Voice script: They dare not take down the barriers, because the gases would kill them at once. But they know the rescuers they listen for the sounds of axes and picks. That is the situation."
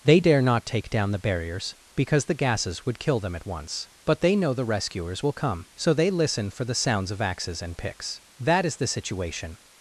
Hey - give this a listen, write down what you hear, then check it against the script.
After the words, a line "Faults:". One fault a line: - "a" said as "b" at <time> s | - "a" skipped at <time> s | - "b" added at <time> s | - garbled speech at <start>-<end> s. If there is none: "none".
They dare not take down the barriers, because the gases would kill them at once. But they know the rescuers will come, so they listen for the sounds of axes and picks. That is the situation."
Faults:
- "will come so" added at 5.2 s